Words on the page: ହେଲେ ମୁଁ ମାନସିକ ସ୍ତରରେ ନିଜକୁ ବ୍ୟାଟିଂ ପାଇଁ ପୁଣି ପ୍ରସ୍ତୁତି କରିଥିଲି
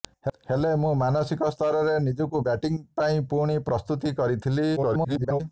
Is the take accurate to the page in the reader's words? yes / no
no